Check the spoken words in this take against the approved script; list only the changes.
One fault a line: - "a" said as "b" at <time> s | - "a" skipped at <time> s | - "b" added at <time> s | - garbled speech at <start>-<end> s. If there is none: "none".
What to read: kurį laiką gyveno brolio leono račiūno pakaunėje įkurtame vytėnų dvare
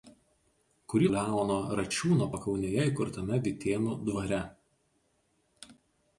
- "laiką gyveno brolio" skipped at 1.1 s